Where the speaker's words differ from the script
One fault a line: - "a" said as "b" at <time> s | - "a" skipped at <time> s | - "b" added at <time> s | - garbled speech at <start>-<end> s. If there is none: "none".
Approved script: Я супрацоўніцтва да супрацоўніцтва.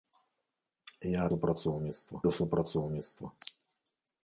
none